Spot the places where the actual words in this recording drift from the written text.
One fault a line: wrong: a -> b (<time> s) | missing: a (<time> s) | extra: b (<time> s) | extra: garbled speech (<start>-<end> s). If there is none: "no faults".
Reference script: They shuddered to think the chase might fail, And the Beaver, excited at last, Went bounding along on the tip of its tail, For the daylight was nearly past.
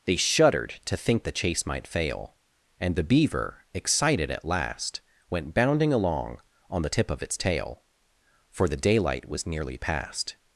no faults